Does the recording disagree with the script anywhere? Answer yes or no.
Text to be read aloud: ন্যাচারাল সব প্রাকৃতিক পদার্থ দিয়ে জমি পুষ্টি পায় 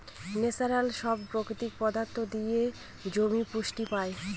no